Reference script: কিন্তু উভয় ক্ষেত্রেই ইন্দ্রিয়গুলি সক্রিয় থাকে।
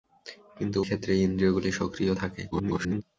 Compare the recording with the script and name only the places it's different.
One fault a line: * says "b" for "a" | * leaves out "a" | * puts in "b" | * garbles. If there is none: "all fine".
* leaves out "উভয়"
* garbles